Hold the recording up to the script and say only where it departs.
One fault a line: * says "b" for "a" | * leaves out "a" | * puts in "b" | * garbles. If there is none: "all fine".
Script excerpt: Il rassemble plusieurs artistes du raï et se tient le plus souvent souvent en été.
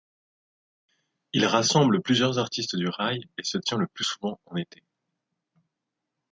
* leaves out "souvent"